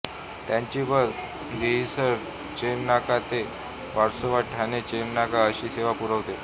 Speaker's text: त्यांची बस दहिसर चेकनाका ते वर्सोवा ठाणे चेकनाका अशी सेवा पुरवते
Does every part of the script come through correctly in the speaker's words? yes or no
yes